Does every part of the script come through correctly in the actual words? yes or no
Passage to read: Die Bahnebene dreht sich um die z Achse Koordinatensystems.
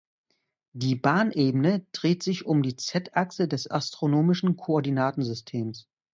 no